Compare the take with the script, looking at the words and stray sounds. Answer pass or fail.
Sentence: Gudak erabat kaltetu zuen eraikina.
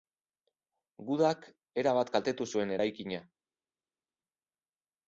pass